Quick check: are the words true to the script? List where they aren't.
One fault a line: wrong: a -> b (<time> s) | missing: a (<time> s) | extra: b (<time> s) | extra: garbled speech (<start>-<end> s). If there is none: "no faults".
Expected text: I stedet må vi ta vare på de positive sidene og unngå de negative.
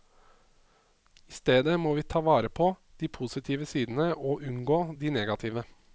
no faults